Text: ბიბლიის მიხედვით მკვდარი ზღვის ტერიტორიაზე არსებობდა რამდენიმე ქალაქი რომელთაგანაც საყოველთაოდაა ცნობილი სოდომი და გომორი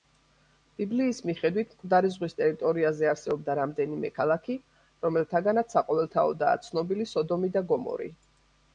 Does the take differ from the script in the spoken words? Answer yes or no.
no